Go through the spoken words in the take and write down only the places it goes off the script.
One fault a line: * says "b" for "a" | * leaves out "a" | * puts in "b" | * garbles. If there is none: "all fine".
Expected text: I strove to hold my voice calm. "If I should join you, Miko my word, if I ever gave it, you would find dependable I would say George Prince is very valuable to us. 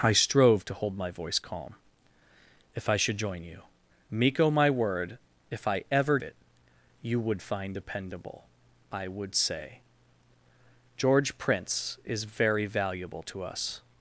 * leaves out "gave"